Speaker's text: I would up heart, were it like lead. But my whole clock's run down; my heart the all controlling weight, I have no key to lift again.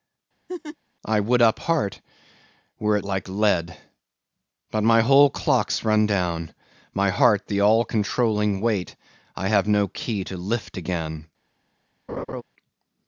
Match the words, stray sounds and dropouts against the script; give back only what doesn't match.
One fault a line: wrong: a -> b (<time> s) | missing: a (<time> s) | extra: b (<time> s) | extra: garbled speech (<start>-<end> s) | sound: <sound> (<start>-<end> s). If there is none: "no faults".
sound: laugh (0.5-0.8 s)
sound: laugh (12.1-12.4 s)